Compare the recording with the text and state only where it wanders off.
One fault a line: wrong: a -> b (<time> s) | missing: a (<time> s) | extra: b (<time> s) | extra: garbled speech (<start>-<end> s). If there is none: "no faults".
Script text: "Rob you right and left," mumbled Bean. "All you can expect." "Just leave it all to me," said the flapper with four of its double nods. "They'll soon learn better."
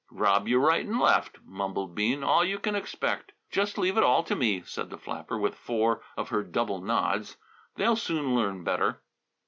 wrong: its -> her (6.3 s)